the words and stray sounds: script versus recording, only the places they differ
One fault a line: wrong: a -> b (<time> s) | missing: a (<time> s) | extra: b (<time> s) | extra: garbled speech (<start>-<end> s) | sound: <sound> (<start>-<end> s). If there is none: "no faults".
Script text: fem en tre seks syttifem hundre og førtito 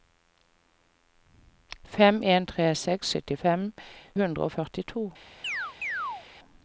sound: chirp (5.4-6.3 s)